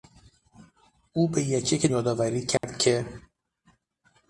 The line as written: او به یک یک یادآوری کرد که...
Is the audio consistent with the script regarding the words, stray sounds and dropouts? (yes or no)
no